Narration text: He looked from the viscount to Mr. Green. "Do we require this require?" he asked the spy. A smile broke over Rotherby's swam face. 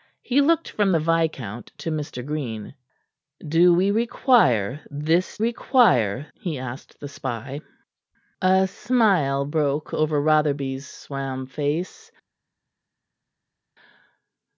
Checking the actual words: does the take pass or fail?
pass